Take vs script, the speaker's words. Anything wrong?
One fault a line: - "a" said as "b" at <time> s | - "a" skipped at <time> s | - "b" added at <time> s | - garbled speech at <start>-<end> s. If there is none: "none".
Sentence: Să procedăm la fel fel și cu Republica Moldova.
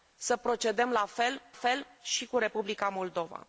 none